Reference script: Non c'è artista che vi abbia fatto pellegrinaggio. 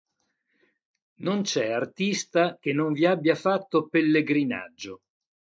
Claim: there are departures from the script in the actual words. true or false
true